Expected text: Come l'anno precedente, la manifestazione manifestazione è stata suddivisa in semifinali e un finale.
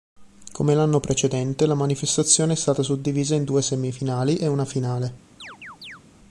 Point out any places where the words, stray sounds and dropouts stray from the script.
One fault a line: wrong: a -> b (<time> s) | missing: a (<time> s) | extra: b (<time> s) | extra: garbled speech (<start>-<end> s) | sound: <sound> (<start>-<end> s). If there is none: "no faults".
missing: manifestazione (2.5 s)
extra: due (3.4 s)
wrong: un -> una (4.5 s)
sound: chirp (5.4-6.0 s)